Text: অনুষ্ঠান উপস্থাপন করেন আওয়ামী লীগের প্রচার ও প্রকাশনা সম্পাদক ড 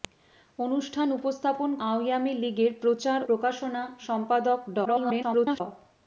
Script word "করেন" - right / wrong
wrong